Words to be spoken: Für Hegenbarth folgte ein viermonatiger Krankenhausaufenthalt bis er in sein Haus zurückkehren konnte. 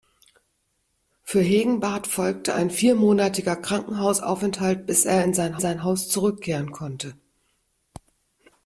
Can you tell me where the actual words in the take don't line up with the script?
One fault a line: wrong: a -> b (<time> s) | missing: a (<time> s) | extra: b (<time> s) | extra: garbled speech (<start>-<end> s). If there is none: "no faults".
extra: sein (5.6 s)